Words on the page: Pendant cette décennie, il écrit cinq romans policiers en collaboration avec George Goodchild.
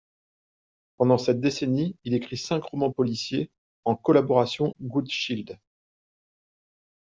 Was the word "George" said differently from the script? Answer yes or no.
yes